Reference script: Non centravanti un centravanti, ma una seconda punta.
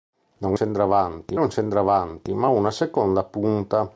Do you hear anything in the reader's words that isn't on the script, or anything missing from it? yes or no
no